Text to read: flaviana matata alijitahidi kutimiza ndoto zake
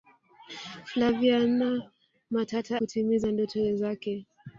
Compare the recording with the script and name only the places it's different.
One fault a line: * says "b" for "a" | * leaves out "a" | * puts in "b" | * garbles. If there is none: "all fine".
* leaves out "alijitahidi"